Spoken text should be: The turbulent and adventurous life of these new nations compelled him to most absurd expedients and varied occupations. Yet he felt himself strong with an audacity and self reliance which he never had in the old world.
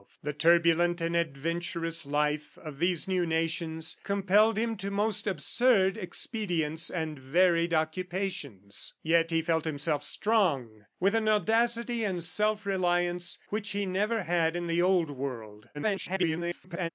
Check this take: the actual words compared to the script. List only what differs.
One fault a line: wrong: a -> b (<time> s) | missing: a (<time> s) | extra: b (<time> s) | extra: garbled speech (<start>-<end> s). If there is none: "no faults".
extra: garbled speech (15.7-16.9 s)